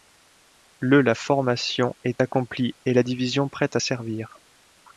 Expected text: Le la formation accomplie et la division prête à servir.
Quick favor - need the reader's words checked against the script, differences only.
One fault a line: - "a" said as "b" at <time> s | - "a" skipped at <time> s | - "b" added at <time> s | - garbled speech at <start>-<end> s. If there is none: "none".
- "est" added at 2.0 s